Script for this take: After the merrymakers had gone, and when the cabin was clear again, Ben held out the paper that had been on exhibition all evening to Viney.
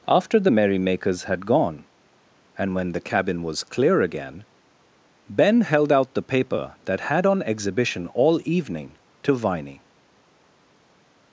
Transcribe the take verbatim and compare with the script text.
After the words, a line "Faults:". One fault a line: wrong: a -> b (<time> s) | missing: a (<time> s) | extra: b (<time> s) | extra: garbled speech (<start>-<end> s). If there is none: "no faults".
After the merrymakers had gone, and when the cabin was clear again, Ben held out the paper that had on exhibition all evening to Viney.
Faults:
missing: been (7.3 s)